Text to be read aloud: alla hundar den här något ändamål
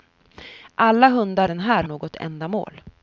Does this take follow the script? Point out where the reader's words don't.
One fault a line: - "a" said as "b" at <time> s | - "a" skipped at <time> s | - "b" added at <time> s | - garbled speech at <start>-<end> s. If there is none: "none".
none